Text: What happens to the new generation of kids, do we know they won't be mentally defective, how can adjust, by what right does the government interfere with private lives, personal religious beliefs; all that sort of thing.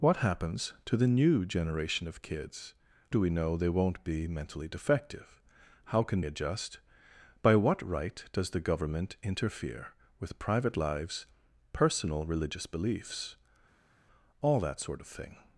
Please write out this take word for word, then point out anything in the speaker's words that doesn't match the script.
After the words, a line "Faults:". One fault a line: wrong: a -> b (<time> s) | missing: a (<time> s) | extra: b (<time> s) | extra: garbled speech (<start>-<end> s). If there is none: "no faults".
What happens to the new generation of kids, do we know they won't be mentally defective, how can adjust, by what right does the government interfere with private lives, personal religious beliefs; all that sort of thing.
Faults:
no faults